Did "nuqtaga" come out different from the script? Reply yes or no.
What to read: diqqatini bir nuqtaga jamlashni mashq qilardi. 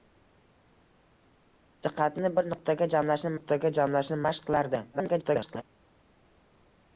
no